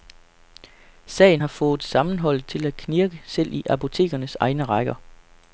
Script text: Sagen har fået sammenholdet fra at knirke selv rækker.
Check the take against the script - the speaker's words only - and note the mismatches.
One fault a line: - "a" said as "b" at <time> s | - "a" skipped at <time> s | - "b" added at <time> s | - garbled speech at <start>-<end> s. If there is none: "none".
- "fra" said as "til" at 2.5 s
- "i apotekernes egne" added at 3.5 s